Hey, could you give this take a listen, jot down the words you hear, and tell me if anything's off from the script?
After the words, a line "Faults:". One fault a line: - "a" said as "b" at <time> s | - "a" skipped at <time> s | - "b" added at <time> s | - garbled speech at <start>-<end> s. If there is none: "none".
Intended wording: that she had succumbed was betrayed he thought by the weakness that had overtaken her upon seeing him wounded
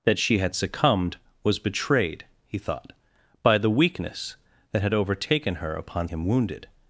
that she had succumbed was betrayed he thought by the weakness that had overtaken her upon him wounded
Faults:
- "seeing" skipped at 6.1 s